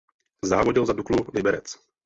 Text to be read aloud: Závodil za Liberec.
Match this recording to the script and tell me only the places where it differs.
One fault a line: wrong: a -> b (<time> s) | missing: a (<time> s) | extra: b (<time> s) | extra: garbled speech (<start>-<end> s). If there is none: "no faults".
extra: Duklu (0.9 s)